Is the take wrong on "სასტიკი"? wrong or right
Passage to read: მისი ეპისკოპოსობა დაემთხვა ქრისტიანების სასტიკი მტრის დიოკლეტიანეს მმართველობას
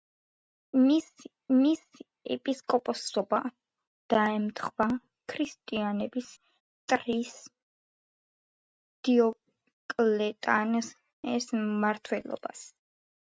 wrong